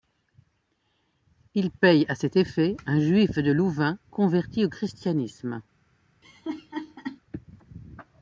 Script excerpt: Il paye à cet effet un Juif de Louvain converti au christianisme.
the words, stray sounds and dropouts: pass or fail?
fail